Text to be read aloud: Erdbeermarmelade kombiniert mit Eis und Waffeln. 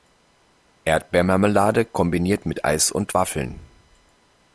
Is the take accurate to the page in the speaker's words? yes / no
yes